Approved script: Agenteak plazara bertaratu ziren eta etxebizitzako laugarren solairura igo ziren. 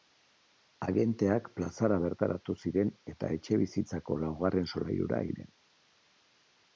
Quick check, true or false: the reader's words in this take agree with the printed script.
false